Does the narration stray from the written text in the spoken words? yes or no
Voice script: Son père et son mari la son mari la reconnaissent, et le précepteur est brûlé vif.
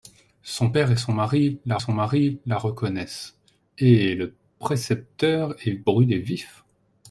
no